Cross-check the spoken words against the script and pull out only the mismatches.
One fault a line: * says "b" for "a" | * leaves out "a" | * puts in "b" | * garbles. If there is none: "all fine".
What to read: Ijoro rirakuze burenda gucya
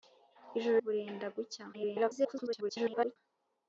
* leaves out "rirakuze"
* garbles